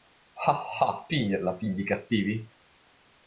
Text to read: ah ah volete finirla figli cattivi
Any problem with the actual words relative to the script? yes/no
yes